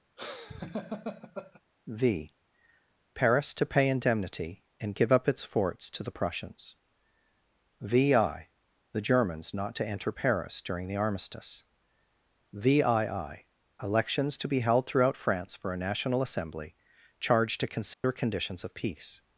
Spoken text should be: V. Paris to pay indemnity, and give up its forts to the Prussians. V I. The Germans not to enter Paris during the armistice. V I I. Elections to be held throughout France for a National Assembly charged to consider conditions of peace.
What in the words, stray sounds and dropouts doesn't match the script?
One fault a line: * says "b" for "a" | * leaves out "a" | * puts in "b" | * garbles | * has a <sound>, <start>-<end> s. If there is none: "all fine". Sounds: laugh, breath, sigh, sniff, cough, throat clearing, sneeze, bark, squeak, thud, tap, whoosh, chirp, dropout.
* has a laugh, 0.2-1.6 s
* has a dropout, 17.9-18.0 s